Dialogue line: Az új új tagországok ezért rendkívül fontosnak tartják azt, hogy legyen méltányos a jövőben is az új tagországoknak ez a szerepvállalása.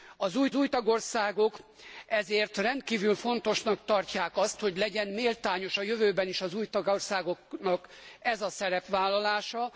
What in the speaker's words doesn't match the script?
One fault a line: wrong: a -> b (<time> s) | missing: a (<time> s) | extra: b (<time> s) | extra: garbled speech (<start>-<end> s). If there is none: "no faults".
no faults